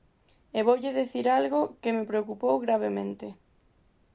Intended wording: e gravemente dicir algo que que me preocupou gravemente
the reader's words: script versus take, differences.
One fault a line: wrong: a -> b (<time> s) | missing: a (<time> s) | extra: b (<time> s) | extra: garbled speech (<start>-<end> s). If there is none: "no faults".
wrong: gravemente -> voulle (0.7 s)
missing: que (1.9 s)